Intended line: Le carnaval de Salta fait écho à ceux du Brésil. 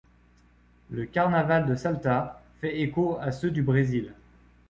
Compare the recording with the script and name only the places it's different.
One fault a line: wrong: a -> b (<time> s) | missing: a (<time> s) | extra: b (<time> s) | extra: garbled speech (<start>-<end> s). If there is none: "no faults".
no faults